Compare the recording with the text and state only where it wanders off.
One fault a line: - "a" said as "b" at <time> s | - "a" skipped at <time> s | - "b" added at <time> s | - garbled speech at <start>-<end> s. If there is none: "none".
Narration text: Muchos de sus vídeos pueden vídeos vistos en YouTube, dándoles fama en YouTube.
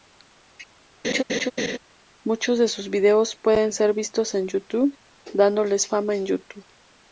- "vídeos" said as "ser" at 3.7 s